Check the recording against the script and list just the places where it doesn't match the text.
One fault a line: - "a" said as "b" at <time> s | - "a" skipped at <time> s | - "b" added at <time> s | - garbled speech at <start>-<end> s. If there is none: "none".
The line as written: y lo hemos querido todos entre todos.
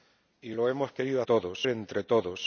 none